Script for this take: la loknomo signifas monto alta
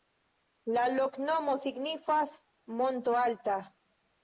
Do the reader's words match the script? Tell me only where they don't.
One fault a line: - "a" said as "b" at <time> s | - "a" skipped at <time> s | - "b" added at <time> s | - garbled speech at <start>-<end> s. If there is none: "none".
none